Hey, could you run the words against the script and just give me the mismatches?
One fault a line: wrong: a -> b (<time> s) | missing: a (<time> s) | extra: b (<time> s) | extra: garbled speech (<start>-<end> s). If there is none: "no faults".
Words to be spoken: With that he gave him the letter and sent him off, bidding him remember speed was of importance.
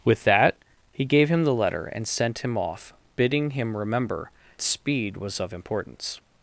no faults